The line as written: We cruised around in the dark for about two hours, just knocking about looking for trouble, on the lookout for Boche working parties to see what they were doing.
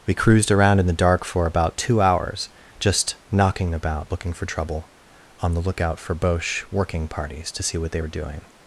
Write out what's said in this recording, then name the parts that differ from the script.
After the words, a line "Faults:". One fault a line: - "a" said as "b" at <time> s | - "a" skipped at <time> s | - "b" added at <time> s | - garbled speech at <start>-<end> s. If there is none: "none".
We cruised around in the dark for about two hours, just knocking about looking for trouble, on the lookout for Boche working parties to see what they were doing.
Faults:
none